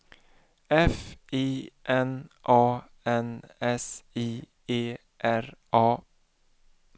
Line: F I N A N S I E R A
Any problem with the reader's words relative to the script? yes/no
no